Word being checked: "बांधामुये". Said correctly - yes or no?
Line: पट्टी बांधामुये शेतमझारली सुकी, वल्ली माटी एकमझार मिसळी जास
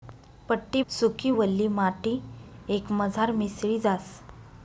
no